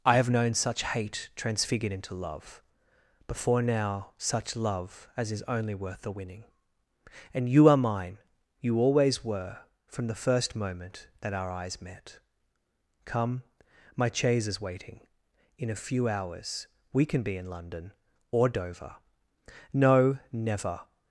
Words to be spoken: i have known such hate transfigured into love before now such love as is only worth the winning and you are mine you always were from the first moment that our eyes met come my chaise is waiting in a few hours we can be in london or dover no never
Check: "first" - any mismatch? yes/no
no